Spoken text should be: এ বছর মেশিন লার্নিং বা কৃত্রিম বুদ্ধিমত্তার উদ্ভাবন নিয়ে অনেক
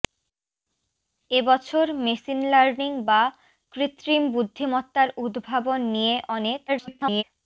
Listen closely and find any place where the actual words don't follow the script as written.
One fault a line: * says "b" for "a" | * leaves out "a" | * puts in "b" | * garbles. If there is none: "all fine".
* garbles